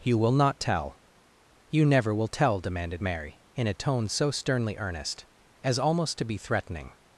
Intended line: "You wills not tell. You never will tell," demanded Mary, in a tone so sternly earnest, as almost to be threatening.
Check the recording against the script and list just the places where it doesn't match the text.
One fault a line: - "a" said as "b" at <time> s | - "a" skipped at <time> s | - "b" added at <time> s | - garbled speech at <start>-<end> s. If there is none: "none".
- "wills" said as "will" at 0.2 s